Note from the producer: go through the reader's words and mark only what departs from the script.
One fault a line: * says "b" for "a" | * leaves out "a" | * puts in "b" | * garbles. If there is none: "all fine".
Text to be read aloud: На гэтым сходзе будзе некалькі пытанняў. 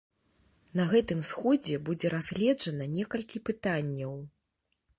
* puts in "разгледжана"